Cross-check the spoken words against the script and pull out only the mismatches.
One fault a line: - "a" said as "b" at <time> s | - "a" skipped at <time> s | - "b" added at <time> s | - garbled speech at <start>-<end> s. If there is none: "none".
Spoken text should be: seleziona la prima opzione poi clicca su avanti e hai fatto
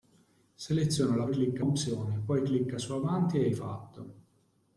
- "prima" said as "clicca" at 1.3 s